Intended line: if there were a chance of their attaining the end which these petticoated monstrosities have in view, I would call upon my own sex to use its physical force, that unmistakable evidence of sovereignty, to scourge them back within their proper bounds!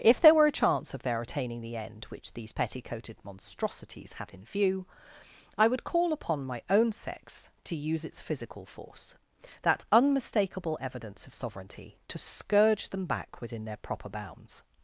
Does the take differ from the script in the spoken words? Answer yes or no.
yes